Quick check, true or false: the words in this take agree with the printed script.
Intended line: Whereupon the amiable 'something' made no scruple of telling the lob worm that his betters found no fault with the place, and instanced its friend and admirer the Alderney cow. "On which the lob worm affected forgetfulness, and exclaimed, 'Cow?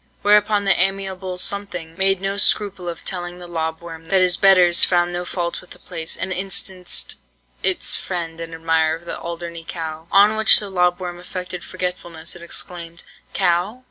true